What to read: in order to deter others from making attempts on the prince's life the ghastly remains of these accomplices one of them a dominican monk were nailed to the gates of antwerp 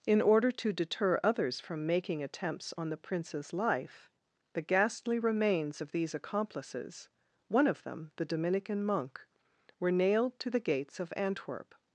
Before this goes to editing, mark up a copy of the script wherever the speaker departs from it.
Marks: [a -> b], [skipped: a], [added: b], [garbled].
in order to deter others from making attempts on the prince's life the ghastly remains of these accomplices one of them [a -> the] dominican monk were nailed to the gates of antwerp